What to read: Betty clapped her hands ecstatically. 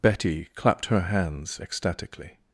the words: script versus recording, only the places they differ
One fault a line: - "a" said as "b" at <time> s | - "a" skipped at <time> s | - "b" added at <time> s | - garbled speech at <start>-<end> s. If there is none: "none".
none